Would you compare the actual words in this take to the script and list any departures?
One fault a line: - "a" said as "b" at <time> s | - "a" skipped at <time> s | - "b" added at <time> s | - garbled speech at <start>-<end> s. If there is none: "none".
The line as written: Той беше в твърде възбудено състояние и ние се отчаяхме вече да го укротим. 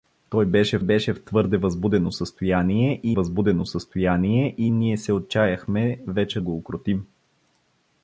- "беше" added at 0.8 s
- "възбудено състояние и" added at 3.1 s
- "да" skipped at 6.4 s